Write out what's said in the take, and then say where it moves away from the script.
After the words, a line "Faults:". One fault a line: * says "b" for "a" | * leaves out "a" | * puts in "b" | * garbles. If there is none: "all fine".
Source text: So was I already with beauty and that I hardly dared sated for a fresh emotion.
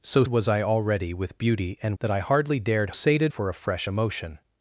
So was I already with beauty and that I hardly dared sated for a fresh emotion.
Faults:
all fine